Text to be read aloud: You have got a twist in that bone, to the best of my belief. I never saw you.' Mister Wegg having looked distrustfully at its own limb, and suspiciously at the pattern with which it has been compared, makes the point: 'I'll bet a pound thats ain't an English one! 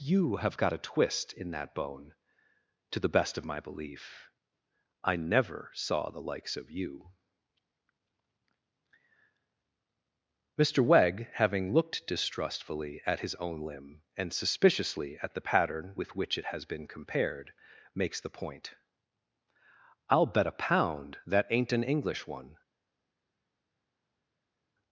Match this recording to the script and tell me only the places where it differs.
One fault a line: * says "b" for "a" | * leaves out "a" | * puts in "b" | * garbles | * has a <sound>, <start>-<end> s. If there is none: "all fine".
* puts in "the likes of"
* says "his" for "its"
* says "that" for "thats"